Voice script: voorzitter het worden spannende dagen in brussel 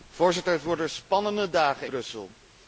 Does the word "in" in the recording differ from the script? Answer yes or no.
yes